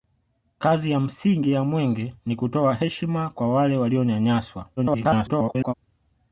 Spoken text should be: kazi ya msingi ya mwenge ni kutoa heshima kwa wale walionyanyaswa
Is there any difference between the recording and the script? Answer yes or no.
yes